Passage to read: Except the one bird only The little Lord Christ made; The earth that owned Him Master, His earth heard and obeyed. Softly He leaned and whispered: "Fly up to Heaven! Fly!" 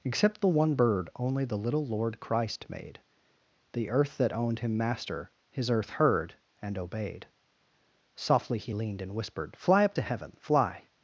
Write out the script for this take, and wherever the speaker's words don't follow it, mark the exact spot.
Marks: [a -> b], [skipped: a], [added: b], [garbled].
Except the one bird only The little Lord Christ made; The earth that owned Him Master, His earth heard and obeyed. Softly He leaned and whispered: "Fly up to Heaven! Fly!"